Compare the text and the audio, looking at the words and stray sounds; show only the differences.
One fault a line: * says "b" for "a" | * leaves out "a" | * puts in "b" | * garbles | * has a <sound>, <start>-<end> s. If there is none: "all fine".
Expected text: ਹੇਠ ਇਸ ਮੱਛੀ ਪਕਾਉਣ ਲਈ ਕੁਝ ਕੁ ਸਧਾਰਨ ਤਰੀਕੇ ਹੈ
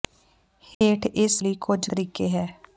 * has a dropout, 0.7-0.8 s
* leaves out "ਮੱਛੀ ਪਕਾਉਣ"
* leaves out "ਕੁ ਸਧਾਰਨ"